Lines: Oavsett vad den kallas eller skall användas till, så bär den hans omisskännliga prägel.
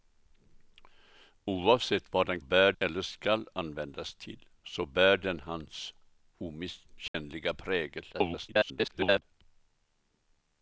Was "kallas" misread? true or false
true